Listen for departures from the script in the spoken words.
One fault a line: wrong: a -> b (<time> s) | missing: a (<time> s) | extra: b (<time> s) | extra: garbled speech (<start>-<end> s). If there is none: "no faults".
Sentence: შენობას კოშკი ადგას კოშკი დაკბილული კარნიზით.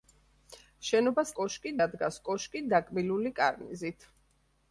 no faults